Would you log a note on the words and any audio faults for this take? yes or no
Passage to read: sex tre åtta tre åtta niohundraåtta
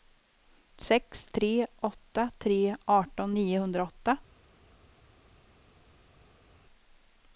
yes